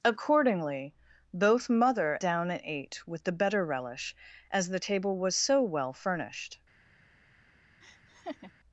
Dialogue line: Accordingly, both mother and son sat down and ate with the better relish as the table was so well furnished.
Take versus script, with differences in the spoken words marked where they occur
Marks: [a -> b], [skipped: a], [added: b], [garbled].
Accordingly, both mother [skipped: and son sat] down and ate with the better relish as the table was so well furnished.